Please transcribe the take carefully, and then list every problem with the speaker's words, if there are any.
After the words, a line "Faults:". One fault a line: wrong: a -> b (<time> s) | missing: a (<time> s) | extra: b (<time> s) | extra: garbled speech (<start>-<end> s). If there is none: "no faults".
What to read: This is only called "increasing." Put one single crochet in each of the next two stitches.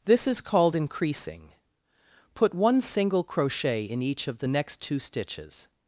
This is called "increasing." Put one single crochet in each of the next two stitches.
Faults:
missing: only (0.4 s)